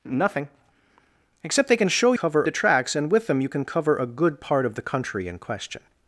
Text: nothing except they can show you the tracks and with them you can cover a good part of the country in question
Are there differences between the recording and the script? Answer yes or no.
yes